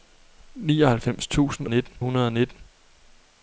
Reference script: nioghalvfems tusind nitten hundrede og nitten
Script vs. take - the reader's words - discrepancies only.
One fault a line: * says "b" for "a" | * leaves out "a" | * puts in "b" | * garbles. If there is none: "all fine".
all fine